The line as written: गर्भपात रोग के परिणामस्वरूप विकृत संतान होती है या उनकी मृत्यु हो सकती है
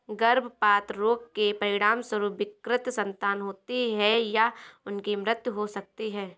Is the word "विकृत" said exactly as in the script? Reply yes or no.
yes